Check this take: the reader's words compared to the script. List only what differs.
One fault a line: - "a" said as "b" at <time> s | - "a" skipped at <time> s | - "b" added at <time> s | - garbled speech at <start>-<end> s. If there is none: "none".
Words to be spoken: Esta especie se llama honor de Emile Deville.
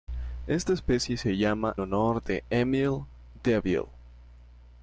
none